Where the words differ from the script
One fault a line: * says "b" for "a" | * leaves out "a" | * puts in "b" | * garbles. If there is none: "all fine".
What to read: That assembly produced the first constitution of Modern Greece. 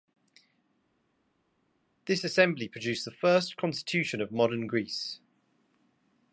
* says "This" for "That"